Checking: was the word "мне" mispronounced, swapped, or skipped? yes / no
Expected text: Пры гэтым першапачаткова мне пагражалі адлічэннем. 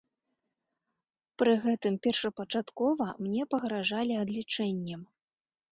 no